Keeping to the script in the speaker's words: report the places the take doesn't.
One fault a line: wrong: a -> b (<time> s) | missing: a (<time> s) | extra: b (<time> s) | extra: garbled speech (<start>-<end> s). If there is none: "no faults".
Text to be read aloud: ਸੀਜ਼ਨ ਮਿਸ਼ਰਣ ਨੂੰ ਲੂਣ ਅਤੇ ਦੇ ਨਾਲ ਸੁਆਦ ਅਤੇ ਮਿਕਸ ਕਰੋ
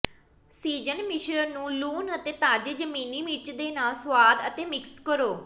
extra: ਤਾਜ਼ੇ ਜ਼ਮੀਨੀ ਮਿਰਚ (2.3 s)